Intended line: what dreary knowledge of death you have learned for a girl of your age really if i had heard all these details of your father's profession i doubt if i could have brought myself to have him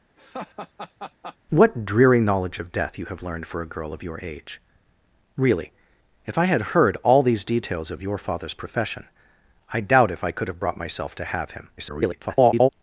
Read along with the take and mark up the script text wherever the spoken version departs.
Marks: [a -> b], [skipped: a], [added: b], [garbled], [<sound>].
[laugh] what dreary knowledge of death you have learned for a girl of your age really if i had heard all these details of your father's profession i doubt if i could have brought myself to have him [garbled]